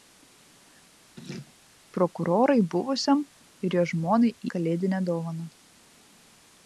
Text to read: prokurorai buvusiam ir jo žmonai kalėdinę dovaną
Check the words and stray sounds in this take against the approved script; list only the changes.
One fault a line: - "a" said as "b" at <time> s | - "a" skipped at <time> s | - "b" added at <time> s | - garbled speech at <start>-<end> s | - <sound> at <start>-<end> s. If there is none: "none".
- laugh at 1.2-1.5 s